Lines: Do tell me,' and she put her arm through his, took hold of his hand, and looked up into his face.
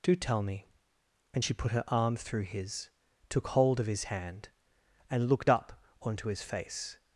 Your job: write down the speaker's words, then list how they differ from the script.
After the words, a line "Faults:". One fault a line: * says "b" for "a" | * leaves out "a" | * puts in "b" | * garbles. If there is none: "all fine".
Do tell me,' and she put her arm through his, took hold of his hand, and looked up onto his face.
Faults:
* says "onto" for "into"